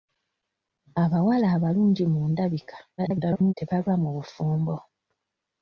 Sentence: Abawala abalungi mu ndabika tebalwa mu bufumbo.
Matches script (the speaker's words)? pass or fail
fail